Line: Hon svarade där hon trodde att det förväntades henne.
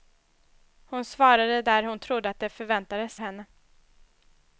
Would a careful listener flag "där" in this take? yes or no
no